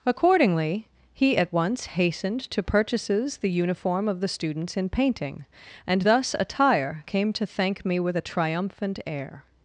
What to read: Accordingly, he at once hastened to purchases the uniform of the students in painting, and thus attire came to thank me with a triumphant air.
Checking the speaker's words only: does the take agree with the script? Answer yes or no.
yes